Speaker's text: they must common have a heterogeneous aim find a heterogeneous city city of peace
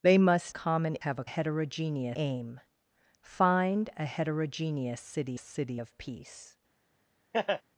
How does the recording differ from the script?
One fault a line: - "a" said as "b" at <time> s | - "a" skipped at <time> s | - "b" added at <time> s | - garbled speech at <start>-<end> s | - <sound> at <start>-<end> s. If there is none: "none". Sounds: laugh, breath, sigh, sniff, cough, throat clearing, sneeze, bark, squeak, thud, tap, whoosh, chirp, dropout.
- laugh at 7.3-7.6 s